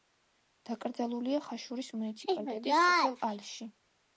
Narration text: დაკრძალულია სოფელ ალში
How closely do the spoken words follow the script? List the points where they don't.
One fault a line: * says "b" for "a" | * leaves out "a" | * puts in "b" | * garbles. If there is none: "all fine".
* puts in "ხაშურის მუნიციპალიტეტის"